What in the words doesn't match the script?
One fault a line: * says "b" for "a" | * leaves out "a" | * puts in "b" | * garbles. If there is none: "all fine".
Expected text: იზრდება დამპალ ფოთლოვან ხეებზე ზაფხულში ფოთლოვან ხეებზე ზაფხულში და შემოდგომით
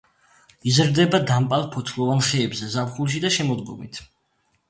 * leaves out "ფოთლოვან ხეებზე ზაფხულში"